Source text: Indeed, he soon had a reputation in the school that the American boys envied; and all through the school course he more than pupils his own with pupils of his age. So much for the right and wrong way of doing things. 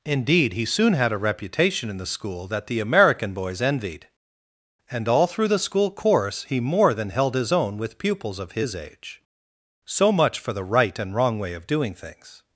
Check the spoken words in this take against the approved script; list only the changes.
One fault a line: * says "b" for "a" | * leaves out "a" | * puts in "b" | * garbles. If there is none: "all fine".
* says "held" for "pupils"